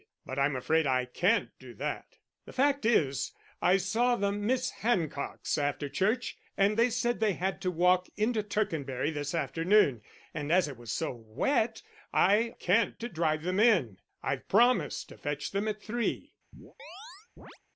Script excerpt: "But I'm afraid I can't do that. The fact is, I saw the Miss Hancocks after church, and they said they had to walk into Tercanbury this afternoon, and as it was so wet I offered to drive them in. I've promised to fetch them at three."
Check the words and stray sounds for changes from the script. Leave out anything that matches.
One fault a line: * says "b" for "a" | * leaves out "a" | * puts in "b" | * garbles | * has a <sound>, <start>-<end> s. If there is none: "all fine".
* says "can't" for "offered"
* has a chirp, 16.5-17.6 s